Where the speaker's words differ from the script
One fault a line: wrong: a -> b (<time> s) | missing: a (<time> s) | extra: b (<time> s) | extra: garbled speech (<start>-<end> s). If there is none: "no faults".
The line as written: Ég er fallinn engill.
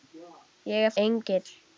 missing: fallinn (0.9 s)